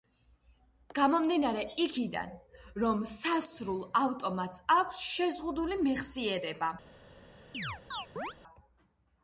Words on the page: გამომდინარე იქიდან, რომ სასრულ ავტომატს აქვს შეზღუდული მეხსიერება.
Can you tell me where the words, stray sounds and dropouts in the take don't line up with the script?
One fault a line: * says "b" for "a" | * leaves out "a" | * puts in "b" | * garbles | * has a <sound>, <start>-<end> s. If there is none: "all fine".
* has a chirp, 7.5-8.3 s